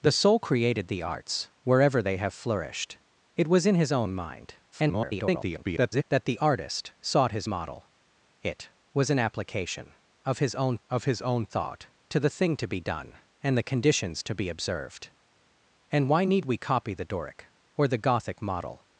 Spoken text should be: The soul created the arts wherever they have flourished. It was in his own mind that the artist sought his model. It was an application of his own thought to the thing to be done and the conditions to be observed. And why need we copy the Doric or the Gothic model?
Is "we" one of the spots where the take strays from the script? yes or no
no